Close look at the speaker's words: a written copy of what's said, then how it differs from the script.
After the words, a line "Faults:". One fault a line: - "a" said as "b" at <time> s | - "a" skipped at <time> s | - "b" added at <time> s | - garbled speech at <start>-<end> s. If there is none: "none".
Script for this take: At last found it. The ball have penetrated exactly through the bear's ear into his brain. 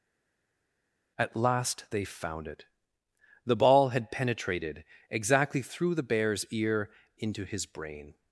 At last they found it. The ball had penetrated exactly through the bear's ear into his brain.
Faults:
- "they" added at 1.9 s
- "have" said as "had" at 3.9 s